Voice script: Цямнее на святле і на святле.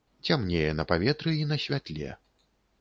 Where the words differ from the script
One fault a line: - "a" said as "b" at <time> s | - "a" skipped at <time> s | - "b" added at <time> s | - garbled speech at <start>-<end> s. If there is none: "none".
- "святле" said as "паветры" at 0.9 s